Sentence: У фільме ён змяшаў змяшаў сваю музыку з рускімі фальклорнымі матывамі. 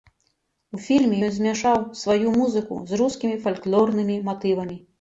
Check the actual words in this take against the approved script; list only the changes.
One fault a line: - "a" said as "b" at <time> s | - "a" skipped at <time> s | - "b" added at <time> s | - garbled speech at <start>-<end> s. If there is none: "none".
- "змяшаў" skipped at 1.8 s